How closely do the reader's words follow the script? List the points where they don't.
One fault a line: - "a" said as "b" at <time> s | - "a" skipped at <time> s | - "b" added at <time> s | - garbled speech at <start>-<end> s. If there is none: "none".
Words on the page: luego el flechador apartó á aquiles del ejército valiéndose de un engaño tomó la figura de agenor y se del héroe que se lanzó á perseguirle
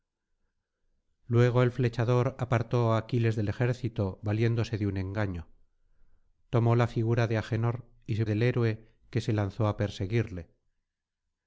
none